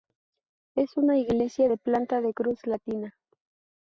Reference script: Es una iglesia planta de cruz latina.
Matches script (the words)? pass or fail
fail